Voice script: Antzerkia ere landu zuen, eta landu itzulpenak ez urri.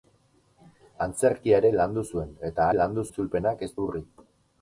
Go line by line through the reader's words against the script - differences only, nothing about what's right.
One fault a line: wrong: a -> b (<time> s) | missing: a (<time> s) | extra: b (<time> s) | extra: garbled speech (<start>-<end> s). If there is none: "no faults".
no faults